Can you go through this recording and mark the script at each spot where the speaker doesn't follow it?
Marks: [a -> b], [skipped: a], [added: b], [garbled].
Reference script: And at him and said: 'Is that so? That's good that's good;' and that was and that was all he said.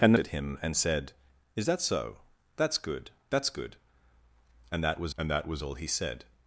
And at him and said: 'Is that so? That's good that's good;' and that was and that was all he said.